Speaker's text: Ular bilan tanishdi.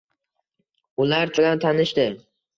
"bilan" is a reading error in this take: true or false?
false